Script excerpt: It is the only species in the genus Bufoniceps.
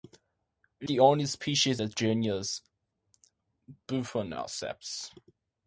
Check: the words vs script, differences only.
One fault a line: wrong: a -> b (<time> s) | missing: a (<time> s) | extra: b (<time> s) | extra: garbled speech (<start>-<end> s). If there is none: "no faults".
missing: is (0.9 s)
missing: in (1.8 s)